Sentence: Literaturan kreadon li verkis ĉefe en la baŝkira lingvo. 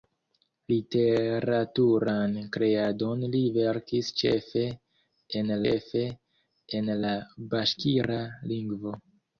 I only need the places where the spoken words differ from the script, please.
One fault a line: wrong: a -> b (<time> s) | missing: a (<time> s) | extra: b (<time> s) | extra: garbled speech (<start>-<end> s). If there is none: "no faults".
extra: ĉefe en (5.6 s)